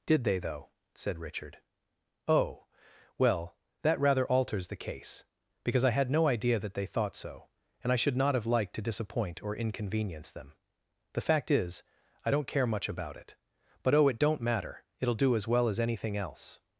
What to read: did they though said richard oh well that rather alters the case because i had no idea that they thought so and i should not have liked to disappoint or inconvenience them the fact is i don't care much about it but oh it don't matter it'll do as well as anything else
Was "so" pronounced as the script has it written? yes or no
yes